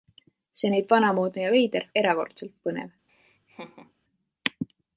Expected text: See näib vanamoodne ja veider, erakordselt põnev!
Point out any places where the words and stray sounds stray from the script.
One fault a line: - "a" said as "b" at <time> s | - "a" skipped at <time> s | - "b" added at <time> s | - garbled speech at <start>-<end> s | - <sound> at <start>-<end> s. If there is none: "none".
- laugh at 3.1-3.9 s